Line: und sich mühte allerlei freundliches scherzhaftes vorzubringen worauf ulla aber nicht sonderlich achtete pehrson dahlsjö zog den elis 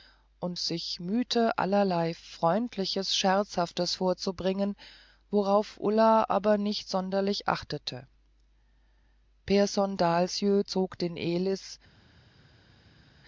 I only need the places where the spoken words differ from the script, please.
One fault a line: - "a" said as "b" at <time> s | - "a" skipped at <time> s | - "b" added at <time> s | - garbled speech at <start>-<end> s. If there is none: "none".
none